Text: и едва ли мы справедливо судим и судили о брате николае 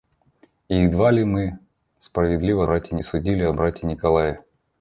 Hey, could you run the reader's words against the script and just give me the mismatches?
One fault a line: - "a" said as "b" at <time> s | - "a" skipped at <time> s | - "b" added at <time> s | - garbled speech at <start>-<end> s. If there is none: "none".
- "судим" said as "брате" at 2.6 s